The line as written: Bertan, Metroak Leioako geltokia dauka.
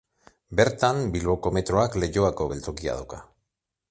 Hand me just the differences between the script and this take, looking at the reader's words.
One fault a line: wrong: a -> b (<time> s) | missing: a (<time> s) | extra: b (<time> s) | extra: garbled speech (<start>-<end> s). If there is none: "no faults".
extra: Bilboko (1.1 s)